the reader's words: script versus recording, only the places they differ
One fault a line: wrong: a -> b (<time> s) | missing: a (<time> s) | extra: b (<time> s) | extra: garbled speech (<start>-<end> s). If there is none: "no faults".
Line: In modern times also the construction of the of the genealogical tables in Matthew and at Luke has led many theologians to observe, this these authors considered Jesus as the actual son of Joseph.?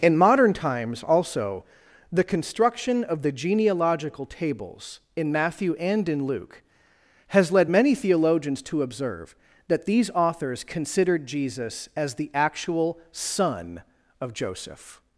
missing: of the (3.3 s)
wrong: at -> in (6.1 s)
wrong: this -> that (9.7 s)